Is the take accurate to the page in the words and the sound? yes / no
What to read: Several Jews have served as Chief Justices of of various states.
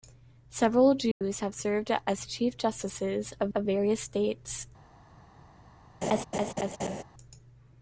no